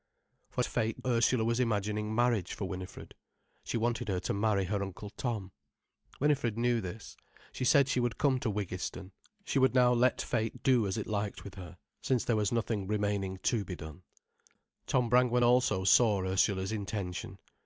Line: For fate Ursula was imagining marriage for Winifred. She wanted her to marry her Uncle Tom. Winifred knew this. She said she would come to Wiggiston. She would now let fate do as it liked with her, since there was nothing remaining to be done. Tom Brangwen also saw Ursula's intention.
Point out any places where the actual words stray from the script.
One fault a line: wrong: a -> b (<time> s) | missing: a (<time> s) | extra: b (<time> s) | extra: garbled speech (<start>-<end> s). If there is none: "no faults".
no faults